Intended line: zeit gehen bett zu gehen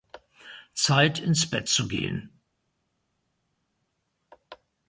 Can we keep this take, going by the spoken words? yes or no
no